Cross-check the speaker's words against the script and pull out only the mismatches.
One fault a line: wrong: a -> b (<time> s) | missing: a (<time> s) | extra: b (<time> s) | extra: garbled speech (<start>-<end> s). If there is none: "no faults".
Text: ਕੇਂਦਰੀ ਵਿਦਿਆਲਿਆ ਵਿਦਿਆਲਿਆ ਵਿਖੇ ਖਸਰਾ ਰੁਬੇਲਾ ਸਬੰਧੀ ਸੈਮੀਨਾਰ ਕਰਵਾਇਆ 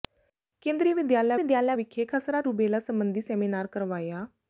no faults